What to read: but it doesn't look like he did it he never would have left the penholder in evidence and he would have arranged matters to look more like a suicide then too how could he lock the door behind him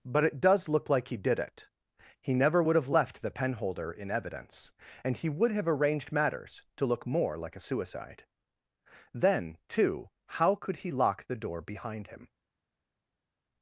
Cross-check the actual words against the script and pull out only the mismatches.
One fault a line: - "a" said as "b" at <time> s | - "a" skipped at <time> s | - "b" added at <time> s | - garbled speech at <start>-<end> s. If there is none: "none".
- "doesn't" said as "does" at 0.4 s